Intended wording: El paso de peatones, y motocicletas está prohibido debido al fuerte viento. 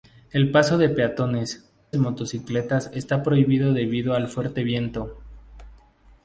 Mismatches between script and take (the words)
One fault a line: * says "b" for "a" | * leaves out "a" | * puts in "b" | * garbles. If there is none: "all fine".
all fine